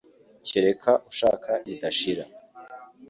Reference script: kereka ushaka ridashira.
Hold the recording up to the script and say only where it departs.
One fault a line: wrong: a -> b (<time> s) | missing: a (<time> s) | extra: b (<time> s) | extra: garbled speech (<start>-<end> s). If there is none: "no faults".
no faults